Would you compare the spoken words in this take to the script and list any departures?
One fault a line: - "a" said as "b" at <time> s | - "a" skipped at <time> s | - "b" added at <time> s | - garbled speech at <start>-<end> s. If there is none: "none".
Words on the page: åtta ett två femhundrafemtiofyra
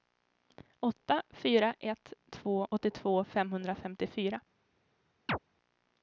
- "fyra" added at 1.3 s
- "åttiotvå" added at 2.7 s